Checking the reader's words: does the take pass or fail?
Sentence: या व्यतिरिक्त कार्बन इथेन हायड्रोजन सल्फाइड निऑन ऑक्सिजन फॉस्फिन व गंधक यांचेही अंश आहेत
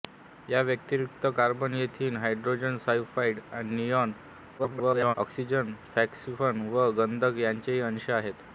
fail